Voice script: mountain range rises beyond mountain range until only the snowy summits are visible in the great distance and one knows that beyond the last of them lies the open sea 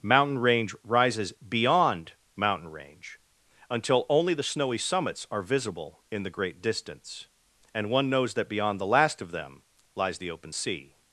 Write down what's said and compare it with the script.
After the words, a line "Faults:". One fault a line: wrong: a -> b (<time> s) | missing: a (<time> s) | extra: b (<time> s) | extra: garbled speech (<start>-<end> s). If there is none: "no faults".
mountain range rises beyond mountain range until only the snowy summits are visible in the great distance and one knows that beyond the last of them lies the open sea
Faults:
no faults